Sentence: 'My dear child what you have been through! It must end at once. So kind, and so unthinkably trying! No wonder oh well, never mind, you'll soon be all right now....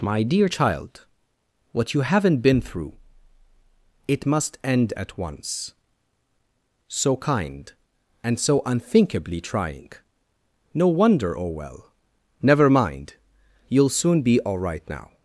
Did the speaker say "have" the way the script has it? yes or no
no